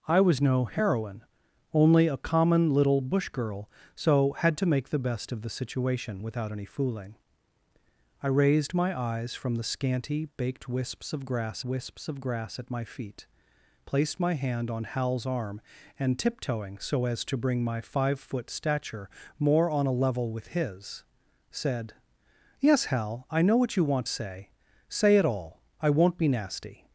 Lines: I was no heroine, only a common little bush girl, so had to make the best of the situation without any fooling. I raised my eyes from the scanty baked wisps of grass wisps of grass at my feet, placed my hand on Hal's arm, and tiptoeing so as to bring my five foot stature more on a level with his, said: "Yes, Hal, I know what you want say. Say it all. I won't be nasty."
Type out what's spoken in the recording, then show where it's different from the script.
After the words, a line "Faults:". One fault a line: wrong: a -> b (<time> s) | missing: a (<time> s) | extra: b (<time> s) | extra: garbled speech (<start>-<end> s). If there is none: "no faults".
I was no heroine, only a common little bush girl, so had to make the best of the situation without any fooling. I raised my eyes from the scanty baked wisps of grass wisps of grass at my feet, placed my hand on Hal's arm, and tiptoeing so as to bring my five foot stature more on a level with his, said: "Yes, Hal, I know what you want say. Say it all. I won't be nasty."
Faults:
no faults